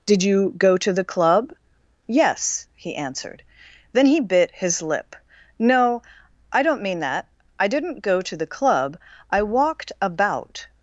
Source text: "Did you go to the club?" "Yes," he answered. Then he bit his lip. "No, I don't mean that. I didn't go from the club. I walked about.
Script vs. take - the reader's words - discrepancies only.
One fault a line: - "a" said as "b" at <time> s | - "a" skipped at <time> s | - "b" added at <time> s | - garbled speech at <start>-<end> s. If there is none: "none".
- "from" said as "to" at 8.2 s